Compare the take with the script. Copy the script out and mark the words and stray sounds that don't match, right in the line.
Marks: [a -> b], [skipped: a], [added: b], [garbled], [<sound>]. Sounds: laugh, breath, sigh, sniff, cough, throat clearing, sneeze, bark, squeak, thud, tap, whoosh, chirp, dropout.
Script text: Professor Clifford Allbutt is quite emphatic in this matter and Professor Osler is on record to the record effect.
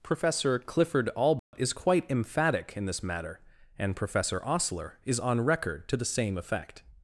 Professor Clifford Allbutt [dropout] is quite emphatic in this matter and Professor Osler is on record to the [record -> same] effect.